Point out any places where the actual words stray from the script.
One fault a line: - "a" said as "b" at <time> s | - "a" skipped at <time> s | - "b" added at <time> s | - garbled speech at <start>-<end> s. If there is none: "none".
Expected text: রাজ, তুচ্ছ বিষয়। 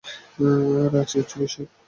none